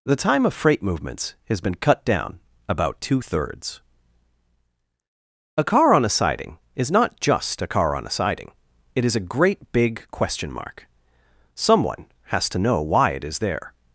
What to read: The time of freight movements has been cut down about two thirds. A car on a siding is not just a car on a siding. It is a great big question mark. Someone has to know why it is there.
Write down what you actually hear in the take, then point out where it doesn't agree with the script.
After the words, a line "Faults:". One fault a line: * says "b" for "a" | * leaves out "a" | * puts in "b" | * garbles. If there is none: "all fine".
The time of freight movements has been cut down about two thirds. A car on a siding is not just a car on a siding. It is a great big question mark. Someone has to know why it is there.
Faults:
all fine